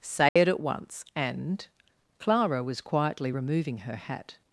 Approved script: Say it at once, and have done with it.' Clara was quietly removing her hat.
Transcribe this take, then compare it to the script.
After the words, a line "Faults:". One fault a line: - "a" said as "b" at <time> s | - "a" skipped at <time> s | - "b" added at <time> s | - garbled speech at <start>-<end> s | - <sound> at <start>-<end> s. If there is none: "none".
Say it at once, and.' Clara was quietly removing her hat.
Faults:
- dropout at 0.3-0.4 s
- "have done with it" skipped at 1.7 s